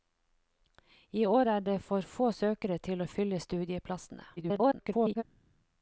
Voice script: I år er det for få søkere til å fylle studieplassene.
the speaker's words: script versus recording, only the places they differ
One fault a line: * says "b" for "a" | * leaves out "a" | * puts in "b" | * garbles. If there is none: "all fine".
* garbles